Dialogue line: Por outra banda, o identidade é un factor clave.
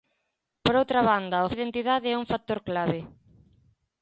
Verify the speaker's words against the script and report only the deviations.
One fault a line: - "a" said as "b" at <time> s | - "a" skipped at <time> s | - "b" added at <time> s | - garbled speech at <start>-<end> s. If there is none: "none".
none